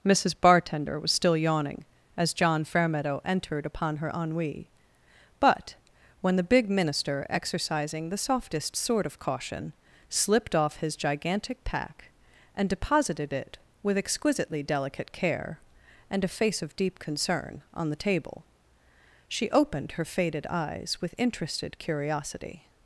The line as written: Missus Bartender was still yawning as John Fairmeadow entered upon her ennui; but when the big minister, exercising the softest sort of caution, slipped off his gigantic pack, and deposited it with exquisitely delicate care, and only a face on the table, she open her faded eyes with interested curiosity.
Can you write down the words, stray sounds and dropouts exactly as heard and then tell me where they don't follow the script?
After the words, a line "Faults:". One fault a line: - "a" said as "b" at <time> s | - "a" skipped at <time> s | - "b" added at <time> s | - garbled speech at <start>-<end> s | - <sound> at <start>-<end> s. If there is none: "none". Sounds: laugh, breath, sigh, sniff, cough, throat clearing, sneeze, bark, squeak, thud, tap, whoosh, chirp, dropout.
Missus Bartender was still yawning as John Fairmeadow entered upon her ennui; but when the big minister, exercising the softest sort of caution, slipped off his gigantic pack, and deposited it with exquisitely delicate care, and a face of deep concern, on the table, she opened her faded eyes with interested curiosity.
Faults:
- "only" skipped at 16.2 s
- "of deep concern" added at 16.6 s
- "open" said as "opened" at 19.5 s